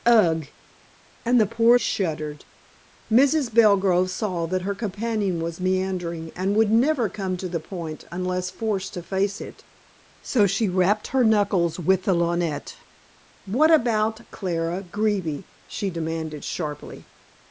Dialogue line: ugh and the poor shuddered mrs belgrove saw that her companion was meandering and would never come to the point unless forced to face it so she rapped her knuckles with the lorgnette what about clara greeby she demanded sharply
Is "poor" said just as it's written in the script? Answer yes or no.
yes